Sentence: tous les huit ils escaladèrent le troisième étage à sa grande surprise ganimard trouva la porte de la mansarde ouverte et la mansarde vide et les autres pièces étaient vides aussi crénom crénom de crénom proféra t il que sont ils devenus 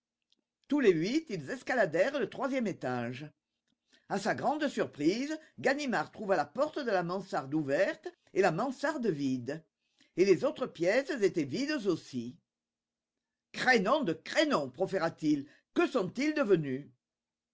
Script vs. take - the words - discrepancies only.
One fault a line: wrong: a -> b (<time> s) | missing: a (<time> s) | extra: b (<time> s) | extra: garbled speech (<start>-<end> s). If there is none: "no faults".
missing: crénom (14.0 s)